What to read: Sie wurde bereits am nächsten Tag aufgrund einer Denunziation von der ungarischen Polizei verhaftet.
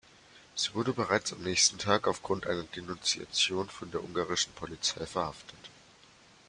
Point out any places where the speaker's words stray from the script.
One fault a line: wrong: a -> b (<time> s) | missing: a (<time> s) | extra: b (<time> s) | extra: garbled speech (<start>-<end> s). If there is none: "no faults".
no faults